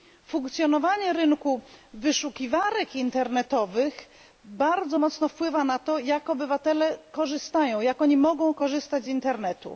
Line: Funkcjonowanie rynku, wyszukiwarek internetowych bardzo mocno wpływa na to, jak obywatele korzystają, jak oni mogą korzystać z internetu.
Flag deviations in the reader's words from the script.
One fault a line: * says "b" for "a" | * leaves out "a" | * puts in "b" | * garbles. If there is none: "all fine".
all fine